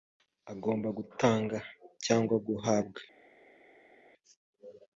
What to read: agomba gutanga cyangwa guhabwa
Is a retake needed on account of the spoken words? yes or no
no